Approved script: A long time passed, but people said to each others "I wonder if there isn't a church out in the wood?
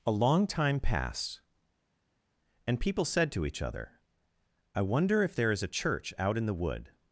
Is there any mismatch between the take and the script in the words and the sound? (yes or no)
yes